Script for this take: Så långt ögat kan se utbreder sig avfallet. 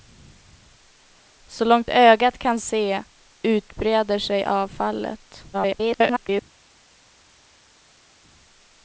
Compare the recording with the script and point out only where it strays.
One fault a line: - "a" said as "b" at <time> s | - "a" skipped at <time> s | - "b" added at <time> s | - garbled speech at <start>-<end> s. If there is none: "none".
- garbled speech at 5.5-6.4 s